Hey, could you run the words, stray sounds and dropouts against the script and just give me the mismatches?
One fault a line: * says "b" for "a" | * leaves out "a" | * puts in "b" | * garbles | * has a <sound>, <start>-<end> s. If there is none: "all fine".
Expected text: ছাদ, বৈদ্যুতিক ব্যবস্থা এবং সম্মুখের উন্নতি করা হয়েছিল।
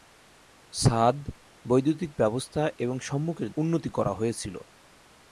all fine